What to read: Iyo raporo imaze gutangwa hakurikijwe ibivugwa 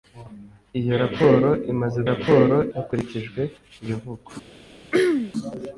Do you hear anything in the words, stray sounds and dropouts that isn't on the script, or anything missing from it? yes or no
yes